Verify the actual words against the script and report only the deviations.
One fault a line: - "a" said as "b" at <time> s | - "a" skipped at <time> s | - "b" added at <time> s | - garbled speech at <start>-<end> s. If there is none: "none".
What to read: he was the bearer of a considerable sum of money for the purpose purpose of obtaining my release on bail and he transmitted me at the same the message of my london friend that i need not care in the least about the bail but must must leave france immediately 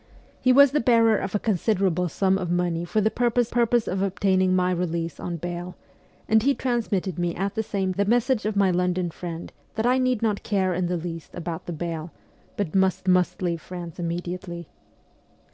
none